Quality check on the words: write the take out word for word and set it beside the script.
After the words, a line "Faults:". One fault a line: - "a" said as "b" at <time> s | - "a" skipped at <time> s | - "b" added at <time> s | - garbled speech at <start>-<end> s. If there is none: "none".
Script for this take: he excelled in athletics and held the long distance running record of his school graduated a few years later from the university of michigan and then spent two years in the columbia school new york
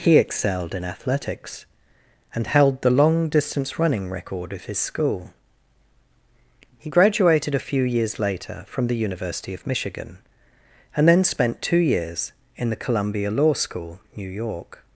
he excelled in athletics and held the long distance running record of his school he graduated a few years later from the university of michigan and then spent two years in the columbia law school new york
Faults:
- "he" added at 6.8 s
- "law" added at 13.3 s